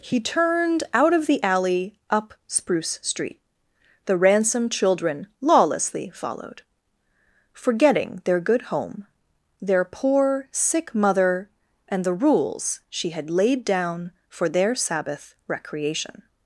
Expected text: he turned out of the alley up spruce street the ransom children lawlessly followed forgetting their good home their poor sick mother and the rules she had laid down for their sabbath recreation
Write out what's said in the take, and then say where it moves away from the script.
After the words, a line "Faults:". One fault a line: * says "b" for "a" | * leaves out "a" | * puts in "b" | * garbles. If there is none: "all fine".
he turned out of the alley up spruce street the ransom children lawlessly followed forgetting their good home their poor sick mother and the rules she had laid down for their sabbath recreation
Faults:
all fine